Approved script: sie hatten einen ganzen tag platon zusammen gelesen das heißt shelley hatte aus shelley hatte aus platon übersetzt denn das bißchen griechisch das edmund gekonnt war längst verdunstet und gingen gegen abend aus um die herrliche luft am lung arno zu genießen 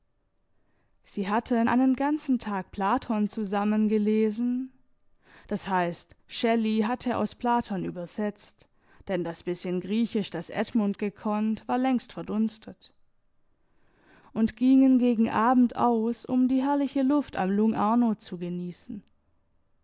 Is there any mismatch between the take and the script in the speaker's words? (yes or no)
yes